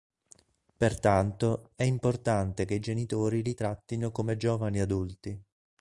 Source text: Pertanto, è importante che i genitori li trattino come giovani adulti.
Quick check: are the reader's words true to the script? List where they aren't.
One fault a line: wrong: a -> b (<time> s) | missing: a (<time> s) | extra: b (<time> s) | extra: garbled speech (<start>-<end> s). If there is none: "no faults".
no faults